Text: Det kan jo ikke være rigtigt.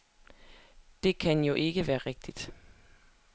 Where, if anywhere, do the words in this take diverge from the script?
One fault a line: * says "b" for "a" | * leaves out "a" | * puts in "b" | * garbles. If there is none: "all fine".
all fine